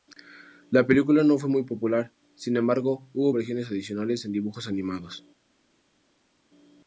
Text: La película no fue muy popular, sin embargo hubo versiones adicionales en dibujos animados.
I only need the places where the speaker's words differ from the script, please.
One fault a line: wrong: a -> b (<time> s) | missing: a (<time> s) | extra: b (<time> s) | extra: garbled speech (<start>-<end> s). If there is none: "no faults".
no faults